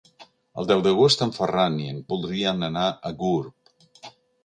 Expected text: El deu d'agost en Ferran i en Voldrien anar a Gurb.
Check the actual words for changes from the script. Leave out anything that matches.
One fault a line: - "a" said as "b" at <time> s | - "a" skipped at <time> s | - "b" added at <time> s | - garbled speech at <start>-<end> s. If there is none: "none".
none